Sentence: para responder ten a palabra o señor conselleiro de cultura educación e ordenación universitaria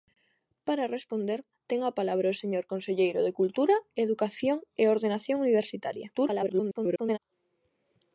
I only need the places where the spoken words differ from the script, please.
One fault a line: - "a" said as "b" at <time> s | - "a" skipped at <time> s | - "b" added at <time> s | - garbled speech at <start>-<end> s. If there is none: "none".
- garbled speech at 6.1-7.2 s